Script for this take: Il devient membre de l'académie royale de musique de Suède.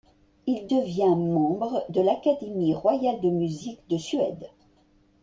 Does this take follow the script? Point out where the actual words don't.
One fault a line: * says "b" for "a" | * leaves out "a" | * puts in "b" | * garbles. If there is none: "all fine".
all fine